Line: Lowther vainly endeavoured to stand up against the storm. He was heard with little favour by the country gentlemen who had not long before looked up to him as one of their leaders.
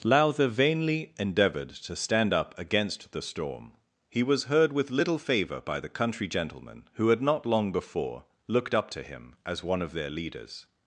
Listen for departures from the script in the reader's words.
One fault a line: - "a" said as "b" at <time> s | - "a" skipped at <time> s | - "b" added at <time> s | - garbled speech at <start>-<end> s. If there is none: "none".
none